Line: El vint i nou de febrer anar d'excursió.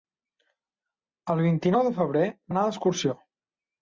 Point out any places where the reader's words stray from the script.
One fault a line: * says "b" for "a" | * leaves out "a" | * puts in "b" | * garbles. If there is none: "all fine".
all fine